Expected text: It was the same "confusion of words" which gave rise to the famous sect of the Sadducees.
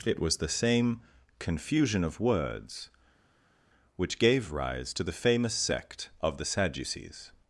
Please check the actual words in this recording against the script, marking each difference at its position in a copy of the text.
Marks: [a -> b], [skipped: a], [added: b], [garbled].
It was the same "confusion of words" which gave rise to the famous sect of the Sadducees.